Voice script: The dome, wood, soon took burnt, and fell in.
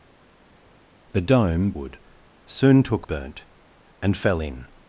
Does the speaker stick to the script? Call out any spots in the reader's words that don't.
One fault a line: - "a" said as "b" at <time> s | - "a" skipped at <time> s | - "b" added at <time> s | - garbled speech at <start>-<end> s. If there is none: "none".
none